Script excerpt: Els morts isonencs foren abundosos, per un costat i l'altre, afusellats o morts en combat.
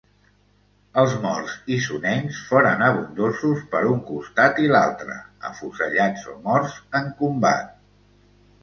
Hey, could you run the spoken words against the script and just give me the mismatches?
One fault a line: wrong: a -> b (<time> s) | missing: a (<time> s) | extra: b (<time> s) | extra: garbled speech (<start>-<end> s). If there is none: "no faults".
no faults